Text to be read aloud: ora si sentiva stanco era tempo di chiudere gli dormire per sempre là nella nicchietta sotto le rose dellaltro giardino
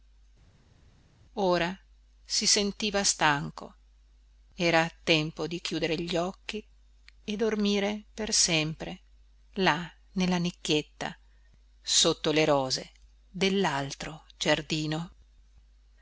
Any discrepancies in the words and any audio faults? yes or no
yes